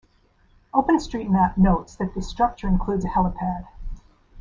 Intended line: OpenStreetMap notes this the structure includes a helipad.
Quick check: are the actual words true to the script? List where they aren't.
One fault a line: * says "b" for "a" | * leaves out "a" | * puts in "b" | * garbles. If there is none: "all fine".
* says "that" for "this"